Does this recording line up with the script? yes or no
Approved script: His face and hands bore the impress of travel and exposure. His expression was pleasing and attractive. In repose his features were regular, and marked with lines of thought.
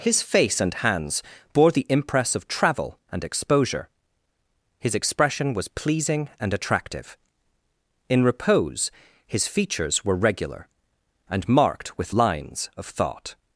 yes